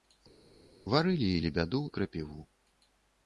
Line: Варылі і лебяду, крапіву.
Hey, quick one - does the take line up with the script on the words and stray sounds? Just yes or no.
yes